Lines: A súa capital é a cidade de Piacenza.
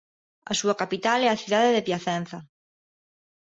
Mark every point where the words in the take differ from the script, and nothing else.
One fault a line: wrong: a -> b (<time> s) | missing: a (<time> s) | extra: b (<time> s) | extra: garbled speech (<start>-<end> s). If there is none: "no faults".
no faults